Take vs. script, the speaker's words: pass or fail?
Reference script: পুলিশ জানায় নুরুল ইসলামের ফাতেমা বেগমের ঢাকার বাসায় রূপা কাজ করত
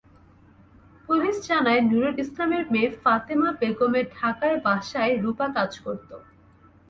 fail